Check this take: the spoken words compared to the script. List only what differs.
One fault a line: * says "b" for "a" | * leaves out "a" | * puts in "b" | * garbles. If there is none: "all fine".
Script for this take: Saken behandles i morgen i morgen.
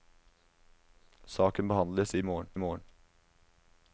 all fine